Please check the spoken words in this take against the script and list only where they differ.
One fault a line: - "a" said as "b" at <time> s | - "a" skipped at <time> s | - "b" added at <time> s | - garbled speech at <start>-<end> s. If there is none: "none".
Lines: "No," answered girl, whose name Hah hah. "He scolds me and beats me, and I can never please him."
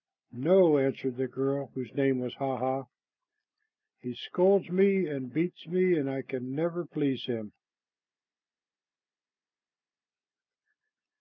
- "the" added at 1.2 s
- "was" added at 2.2 s